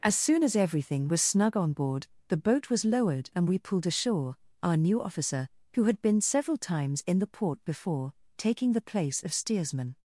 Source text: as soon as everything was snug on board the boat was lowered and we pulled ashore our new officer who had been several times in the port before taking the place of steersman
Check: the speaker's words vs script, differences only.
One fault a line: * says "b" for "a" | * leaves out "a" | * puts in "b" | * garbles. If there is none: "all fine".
all fine